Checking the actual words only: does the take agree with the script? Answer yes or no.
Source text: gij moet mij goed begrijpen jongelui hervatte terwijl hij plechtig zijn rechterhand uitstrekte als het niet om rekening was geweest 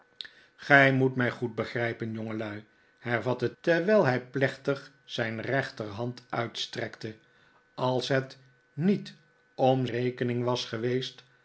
yes